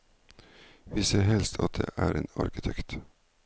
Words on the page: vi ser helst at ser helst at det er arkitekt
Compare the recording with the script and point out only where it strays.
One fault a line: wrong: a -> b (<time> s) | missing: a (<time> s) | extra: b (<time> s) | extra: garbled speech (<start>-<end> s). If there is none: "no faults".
missing: ser helst at (1.8 s)
extra: en (2.1 s)